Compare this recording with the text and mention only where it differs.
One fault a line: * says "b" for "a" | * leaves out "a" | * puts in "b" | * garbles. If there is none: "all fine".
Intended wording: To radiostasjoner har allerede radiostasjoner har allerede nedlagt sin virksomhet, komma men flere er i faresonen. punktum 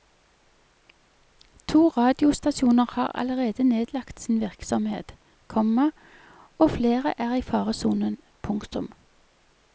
* leaves out "radiostasjoner har allerede"
* says "og" for "men"